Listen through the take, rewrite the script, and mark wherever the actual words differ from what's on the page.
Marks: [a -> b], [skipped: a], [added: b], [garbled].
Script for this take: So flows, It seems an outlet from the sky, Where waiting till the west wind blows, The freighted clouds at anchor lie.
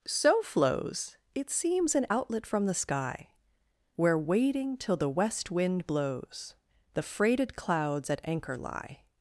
So flows, It seems an outlet from the sky, Where waiting till the west wind blows, The freighted clouds at anchor lie.